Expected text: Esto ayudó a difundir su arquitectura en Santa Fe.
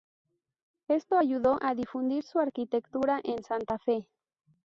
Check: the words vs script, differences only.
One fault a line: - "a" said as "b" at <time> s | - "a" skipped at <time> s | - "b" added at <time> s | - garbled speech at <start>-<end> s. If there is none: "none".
none